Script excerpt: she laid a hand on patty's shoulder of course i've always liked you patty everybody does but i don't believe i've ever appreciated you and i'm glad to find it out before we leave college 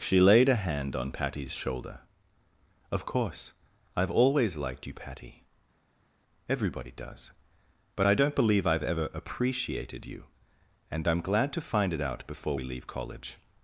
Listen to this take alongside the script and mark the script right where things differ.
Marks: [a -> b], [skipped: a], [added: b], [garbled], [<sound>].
she laid a hand on patty's shoulder of course i've always liked you patty everybody does but i don't believe i've ever appreciated you and i'm glad to find it out before we leave college